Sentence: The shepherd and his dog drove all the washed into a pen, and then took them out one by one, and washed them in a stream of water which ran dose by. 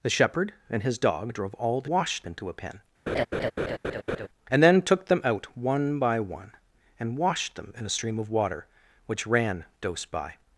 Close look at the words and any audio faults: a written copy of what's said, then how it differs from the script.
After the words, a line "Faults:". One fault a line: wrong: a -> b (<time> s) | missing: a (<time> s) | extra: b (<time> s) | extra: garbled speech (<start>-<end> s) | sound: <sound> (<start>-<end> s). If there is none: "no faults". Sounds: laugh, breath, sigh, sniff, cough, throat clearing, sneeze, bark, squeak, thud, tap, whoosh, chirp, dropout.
The shepherd and his dog drove all the washed into a pen, and then took them out one by one, and washed them in a stream of water which ran dose by.
Faults:
sound: laugh (3.1-4.3 s)